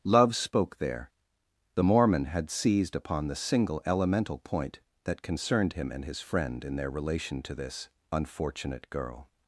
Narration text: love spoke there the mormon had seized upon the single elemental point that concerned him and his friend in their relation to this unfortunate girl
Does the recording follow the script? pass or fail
pass